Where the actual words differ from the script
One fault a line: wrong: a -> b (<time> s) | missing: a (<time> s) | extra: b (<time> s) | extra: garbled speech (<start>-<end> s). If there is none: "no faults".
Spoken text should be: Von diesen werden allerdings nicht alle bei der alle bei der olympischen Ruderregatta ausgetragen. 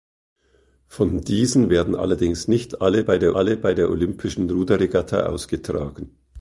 no faults